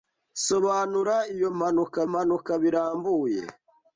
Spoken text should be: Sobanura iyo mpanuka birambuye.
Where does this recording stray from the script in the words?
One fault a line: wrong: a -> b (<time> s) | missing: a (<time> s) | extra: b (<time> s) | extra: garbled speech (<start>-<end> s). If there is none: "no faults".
extra: mpanuka (2.1 s)